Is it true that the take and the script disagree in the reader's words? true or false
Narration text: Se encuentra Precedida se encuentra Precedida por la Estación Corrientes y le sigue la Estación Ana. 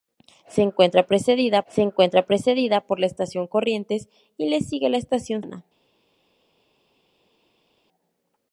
false